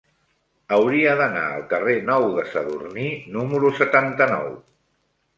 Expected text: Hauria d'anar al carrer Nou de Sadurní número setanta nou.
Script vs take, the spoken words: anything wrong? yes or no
no